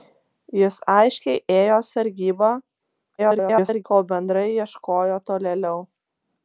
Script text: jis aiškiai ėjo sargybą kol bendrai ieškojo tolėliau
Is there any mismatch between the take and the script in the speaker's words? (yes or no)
yes